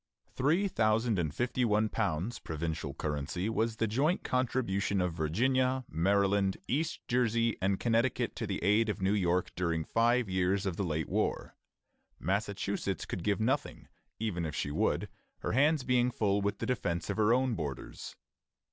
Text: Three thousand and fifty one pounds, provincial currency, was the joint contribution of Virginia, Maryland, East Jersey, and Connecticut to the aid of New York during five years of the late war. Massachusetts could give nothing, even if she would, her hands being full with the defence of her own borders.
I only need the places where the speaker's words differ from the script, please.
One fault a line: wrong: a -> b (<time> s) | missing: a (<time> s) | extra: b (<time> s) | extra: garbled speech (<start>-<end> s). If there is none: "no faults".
no faults